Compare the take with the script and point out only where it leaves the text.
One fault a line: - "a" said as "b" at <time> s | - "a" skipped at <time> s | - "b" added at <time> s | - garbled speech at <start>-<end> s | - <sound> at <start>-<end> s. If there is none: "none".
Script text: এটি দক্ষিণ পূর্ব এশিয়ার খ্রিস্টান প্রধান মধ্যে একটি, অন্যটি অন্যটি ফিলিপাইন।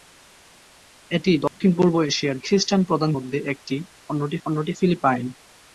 - dropout at 1.5-1.6 s